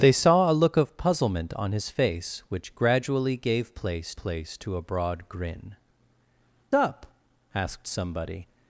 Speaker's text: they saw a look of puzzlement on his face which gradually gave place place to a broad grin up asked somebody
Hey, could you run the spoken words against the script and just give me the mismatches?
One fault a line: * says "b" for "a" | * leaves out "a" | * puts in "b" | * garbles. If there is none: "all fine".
all fine